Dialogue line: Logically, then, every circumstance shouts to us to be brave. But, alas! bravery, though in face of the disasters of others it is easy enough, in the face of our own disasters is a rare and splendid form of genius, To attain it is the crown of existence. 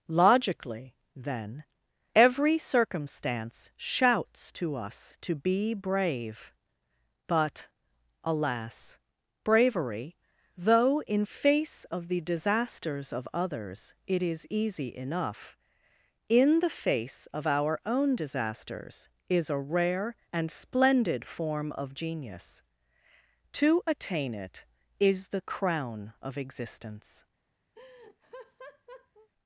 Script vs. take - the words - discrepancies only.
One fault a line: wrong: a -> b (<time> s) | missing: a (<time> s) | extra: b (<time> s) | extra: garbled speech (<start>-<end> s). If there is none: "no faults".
no faults